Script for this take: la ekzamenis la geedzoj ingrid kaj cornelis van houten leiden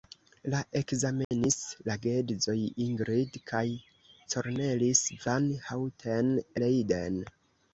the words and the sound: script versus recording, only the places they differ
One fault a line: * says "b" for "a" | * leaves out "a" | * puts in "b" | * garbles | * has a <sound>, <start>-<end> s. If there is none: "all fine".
* has a dropout, 1.2-1.3 s